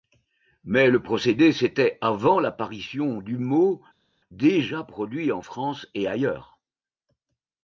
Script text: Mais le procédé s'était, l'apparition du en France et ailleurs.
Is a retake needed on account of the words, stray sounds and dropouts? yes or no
yes